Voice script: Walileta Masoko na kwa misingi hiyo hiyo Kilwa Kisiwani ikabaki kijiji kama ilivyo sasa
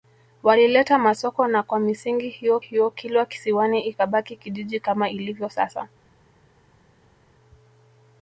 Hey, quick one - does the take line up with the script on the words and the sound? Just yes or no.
yes